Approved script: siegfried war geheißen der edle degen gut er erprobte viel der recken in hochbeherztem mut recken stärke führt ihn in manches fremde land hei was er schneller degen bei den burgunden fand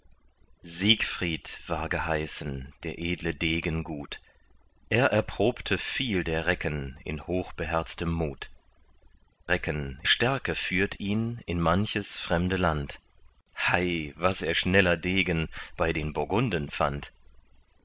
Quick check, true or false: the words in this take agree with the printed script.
true